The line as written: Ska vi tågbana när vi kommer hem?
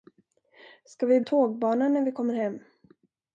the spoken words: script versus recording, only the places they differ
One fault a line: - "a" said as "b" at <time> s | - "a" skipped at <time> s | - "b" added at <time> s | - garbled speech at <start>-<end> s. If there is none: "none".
none